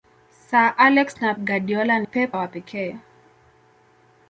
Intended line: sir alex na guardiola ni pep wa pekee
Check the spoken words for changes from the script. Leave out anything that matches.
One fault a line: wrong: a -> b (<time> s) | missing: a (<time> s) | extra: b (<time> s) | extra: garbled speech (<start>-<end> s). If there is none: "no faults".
no faults